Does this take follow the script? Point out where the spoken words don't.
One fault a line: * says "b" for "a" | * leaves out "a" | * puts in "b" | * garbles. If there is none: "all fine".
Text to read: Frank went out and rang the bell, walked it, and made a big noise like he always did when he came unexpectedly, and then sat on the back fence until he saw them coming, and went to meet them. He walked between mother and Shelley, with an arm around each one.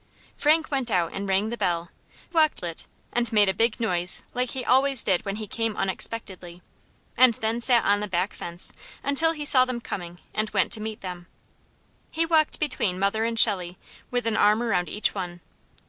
all fine